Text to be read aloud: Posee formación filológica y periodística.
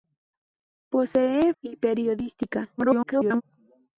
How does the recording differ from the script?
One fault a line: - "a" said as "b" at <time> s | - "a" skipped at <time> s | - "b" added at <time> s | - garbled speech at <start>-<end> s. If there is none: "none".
- "formación filológica" skipped at 1.5 s
- garbled speech at 2.8-3.4 s